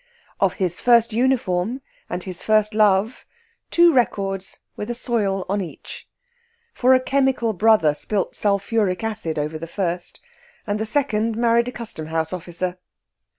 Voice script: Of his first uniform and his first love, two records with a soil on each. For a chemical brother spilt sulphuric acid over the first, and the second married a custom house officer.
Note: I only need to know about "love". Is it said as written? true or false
true